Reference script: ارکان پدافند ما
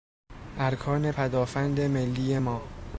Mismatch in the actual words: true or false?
true